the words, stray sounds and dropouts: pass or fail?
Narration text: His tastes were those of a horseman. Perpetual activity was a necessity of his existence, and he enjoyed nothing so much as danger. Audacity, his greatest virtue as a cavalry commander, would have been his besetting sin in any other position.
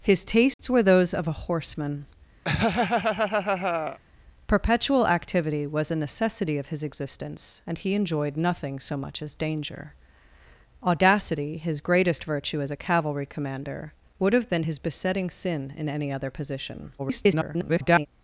fail